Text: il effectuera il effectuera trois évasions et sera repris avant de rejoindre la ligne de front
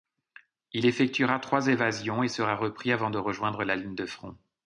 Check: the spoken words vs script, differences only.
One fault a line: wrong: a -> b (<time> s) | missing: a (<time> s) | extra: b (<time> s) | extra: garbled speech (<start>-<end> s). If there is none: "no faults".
missing: il effectuera (1.4 s)